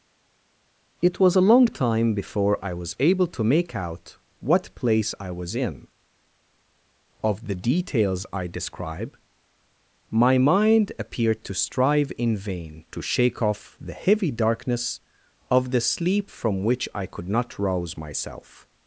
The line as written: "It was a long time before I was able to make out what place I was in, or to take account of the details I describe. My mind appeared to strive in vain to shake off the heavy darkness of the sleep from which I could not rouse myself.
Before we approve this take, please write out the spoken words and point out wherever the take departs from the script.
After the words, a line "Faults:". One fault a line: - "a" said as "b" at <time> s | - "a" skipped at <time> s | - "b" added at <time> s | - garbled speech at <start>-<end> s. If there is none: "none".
"It was a long time before I was able to make out what place I was in, of the details I describe. My mind appeared to strive in vain to shake off the heavy darkness of the sleep from which I could not rouse myself.
Faults:
- "or to take account" skipped at 5.9 s